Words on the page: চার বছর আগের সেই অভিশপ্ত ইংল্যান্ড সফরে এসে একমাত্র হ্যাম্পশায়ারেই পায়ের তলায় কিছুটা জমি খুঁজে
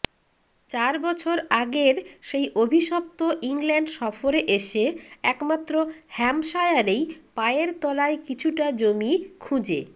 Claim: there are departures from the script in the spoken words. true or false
false